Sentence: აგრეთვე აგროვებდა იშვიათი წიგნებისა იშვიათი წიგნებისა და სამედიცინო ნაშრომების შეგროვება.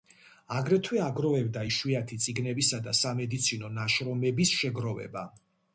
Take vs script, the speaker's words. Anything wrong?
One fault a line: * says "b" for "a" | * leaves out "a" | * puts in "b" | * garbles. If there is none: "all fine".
* leaves out "იშვიათი წიგნებისა"